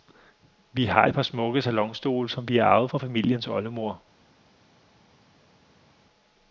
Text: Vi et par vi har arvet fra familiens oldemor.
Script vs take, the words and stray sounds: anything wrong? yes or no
yes